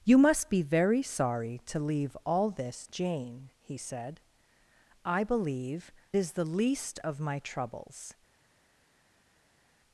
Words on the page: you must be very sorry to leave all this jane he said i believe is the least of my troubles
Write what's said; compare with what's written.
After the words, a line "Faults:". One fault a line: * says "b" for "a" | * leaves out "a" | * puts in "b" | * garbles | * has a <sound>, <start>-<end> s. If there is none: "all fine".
you must be very sorry to leave all this jane he said i believe is the least of my troubles
Faults:
all fine